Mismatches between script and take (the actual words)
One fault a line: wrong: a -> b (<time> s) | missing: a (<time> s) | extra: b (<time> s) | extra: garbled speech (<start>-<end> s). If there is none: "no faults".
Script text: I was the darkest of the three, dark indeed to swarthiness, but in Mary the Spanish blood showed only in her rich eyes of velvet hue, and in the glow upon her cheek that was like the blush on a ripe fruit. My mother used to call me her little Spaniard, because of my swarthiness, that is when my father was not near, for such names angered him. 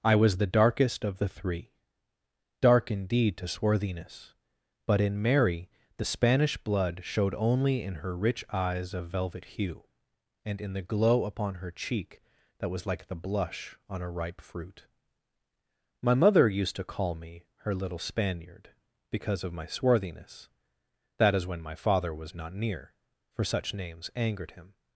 no faults